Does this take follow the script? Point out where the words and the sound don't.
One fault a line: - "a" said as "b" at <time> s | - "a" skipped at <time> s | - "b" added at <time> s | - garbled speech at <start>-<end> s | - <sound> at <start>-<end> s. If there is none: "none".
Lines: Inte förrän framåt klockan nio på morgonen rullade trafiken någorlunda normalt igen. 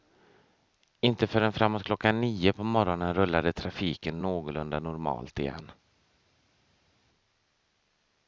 none